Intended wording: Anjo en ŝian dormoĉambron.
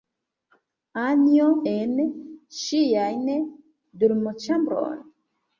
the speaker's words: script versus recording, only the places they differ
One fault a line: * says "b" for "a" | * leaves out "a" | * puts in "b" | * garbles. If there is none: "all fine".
all fine